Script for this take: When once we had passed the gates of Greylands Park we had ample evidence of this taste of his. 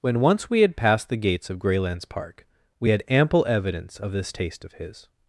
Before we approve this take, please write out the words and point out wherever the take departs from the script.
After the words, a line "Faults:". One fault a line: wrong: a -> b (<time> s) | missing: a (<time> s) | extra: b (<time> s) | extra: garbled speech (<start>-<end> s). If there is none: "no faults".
When once we had passed the gates of Greylands Park we had ample evidence of this taste of his.
Faults:
no faults